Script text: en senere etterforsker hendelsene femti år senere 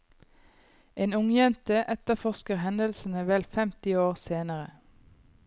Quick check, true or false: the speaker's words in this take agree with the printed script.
false